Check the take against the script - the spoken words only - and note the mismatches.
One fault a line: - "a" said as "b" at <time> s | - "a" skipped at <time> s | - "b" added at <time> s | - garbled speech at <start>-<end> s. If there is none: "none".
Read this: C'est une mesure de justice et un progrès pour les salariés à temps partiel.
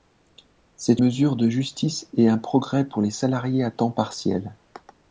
- "une" skipped at 1.0 s